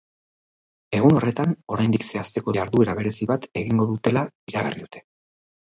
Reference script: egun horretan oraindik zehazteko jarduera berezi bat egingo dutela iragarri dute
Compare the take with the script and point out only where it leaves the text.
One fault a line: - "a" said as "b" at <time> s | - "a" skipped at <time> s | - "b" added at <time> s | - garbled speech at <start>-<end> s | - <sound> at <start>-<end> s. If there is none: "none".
none